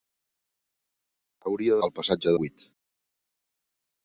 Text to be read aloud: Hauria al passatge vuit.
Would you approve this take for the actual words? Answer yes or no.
yes